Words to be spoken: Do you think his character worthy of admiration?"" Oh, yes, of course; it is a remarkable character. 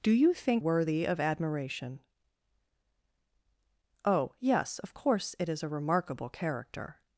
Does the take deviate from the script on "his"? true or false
true